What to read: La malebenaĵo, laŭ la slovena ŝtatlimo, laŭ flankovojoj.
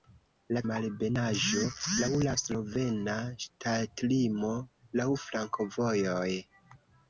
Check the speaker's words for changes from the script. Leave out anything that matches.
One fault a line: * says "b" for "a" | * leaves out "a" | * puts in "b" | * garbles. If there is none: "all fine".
all fine